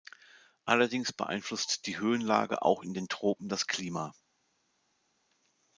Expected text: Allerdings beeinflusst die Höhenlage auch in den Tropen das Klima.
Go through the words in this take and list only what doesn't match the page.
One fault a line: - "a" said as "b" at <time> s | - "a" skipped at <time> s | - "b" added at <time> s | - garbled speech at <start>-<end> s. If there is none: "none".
none